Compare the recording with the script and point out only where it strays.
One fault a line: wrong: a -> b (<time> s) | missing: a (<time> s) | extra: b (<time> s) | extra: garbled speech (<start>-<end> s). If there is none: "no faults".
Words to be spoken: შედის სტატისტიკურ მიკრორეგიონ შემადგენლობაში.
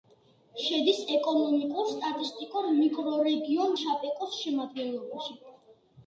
extra: ეკონომიკურ (1.1 s)
extra: შაპეკოს (3.8 s)